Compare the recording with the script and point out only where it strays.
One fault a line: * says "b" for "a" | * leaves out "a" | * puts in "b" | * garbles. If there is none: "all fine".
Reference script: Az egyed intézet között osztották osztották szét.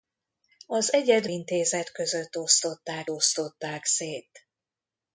all fine